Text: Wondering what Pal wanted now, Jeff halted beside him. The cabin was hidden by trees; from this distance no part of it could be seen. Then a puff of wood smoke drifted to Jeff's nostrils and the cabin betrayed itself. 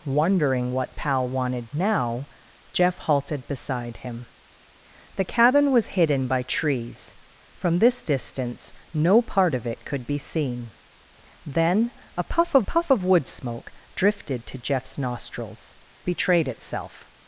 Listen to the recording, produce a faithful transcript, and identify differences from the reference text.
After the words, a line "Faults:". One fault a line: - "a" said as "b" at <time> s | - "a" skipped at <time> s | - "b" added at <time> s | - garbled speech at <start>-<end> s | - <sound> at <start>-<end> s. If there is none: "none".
Wondering what Pal wanted now, Jeff halted beside him. The cabin was hidden by trees; from this distance no part of it could be seen. Then a puff of puff of wood smoke drifted to Jeff's nostrils betrayed itself.
Faults:
- "puff of" added at 12.6 s
- "and the cabin" skipped at 15.7 s